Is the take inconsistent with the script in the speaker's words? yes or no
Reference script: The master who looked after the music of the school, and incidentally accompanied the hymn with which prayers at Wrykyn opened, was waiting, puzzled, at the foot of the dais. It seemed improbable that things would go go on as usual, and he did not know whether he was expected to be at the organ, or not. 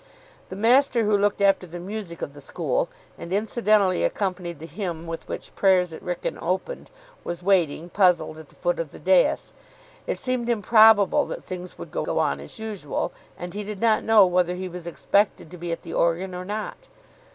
no